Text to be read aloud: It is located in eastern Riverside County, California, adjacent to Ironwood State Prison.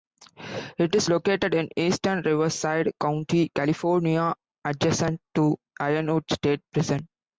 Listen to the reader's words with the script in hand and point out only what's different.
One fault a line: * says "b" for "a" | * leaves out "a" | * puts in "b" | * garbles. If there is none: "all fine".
all fine